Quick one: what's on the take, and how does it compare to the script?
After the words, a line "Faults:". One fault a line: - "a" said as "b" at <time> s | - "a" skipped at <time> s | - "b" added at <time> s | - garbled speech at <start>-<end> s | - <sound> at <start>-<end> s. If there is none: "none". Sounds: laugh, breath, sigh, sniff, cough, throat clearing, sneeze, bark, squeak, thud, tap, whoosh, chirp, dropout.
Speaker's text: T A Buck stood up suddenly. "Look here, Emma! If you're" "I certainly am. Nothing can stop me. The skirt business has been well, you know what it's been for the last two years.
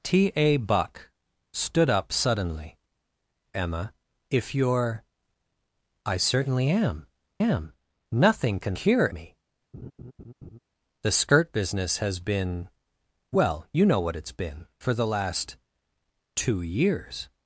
T A Buck stood up suddenly. "Emma! If you're" "I certainly am am. Nothing can here me. The skirt business has been well, you know what it's been for the last two years.
Faults:
- "Look here" skipped at 2.8 s
- "am" added at 7.4 s
- "stop" said as "here" at 8.8 s
- laugh at 9.7-10.6 s